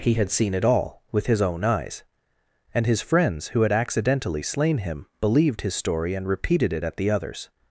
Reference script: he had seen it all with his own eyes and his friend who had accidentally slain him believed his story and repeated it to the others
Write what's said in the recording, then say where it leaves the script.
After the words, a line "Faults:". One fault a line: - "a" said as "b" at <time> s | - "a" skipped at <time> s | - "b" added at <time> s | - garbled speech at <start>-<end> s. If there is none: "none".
he had seen it all with his own eyes and his friends who had accidentally slain him believed his story and repeated it at the others
Faults:
- "friend" said as "friends" at 3.0 s
- "to" said as "at" at 6.8 s